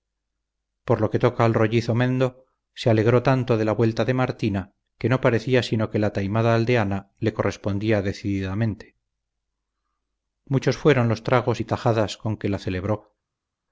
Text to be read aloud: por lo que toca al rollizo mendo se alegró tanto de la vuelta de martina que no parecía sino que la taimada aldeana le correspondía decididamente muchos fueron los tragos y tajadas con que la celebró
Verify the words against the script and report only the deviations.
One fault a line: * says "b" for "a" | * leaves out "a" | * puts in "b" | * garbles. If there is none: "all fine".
all fine